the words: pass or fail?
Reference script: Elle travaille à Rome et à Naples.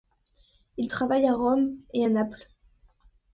fail